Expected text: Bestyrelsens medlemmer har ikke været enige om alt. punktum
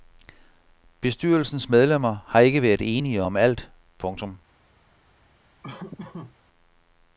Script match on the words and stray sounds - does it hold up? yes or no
no